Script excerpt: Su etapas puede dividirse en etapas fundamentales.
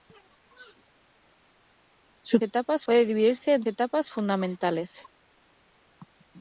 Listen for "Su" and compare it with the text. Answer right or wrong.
right